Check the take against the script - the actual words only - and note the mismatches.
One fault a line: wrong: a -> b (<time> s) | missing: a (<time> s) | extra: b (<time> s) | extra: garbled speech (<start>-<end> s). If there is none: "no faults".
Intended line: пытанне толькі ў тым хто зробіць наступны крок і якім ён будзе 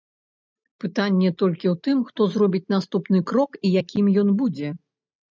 no faults